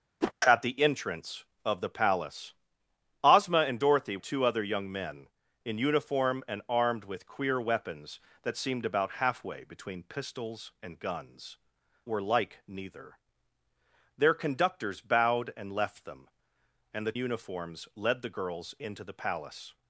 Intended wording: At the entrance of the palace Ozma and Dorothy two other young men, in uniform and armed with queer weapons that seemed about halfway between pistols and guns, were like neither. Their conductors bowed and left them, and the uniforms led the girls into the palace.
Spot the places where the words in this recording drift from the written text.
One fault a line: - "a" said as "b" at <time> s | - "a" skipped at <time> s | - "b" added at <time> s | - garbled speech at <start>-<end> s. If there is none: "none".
none